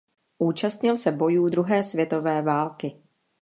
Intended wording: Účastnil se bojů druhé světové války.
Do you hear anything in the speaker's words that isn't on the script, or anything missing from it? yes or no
no